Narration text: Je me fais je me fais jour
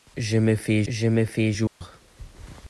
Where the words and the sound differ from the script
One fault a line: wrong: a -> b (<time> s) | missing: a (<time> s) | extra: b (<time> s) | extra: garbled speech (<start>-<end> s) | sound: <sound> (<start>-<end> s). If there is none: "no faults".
sound: dropout (1.7-1.8 s)